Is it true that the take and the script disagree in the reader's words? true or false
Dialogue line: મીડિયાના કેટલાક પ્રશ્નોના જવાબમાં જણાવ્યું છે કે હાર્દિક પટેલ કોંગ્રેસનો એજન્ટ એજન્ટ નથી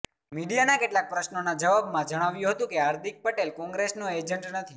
true